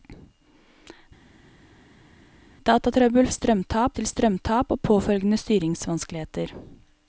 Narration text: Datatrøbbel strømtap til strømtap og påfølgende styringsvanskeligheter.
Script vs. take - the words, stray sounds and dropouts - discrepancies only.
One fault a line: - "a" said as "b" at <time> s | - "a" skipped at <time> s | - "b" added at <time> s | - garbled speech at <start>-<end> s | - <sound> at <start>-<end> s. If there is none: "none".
none